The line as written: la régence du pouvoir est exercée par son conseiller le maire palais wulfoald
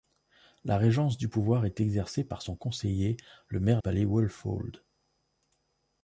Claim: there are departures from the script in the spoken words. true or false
false